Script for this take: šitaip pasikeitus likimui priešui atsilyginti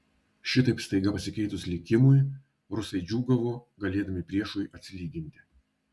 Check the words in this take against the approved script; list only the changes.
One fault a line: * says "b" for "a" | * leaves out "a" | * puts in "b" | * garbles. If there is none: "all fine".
* puts in "staiga"
* puts in "rusai džiūgavo galėdami"